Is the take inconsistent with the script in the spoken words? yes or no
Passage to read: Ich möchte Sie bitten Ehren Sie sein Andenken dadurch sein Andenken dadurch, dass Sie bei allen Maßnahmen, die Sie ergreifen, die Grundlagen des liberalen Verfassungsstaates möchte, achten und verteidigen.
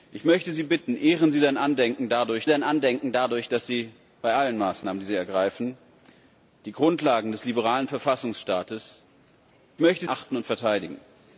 no